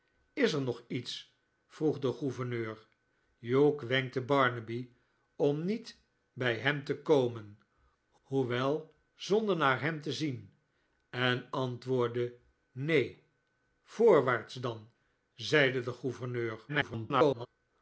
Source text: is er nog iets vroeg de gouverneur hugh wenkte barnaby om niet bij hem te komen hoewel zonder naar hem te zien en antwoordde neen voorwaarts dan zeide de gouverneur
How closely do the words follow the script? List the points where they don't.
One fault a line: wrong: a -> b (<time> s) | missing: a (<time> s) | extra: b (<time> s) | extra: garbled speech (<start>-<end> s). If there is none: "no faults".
extra: garbled speech (16.7-17.5 s)